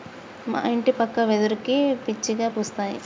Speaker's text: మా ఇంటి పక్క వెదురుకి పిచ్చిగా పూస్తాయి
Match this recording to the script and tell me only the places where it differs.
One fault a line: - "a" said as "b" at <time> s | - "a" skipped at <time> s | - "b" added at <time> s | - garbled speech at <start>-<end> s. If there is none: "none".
none